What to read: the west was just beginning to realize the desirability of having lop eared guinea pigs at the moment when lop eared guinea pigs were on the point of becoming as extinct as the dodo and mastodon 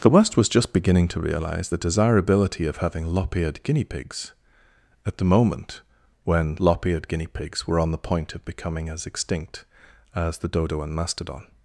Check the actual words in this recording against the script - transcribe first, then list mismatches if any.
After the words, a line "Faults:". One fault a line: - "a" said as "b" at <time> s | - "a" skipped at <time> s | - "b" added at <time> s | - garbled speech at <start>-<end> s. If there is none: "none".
the west was just beginning to realize the desirability of having lop eared guinea pigs at the moment when lop eared guinea pigs were on the point of becoming as extinct as the dodo and mastodon
Faults:
none